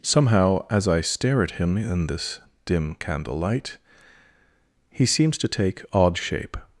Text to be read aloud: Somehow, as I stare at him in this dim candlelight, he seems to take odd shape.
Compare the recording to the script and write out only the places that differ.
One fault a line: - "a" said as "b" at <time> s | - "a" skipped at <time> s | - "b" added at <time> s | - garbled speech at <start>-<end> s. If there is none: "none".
none